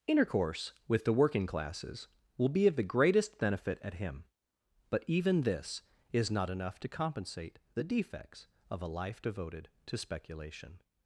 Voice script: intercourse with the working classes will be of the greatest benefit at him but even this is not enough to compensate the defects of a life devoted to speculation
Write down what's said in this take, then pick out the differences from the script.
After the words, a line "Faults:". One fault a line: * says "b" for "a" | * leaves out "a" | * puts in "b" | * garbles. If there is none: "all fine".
intercourse with the working classes will be of the greatest benefit at him but even this is not enough to compensate the defects of a life devoted to speculation
Faults:
all fine